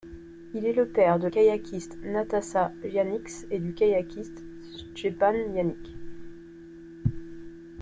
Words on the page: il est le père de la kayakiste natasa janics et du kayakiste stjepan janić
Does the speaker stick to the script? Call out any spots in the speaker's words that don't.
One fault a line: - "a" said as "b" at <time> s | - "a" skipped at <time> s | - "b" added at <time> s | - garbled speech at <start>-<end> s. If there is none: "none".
- "la" skipped at 1.3 s